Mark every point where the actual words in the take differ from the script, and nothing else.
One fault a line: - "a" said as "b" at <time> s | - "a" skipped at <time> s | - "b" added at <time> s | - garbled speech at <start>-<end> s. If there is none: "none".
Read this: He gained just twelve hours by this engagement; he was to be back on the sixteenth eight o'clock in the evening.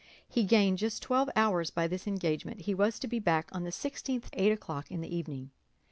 none